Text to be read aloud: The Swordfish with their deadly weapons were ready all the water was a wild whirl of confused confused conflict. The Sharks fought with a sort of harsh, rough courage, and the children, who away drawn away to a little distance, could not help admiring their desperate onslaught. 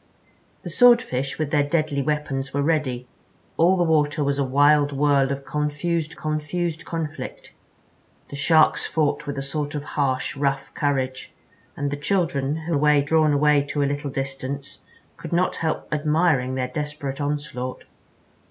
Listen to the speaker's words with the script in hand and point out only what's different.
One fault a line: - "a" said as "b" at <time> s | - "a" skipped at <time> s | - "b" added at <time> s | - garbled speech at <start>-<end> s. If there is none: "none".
none